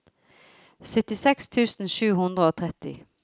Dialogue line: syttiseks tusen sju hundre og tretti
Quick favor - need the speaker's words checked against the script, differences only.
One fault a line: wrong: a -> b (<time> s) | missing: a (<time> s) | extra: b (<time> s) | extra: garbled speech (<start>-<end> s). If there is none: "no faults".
no faults